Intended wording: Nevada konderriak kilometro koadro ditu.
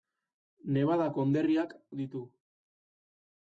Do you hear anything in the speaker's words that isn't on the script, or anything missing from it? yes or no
yes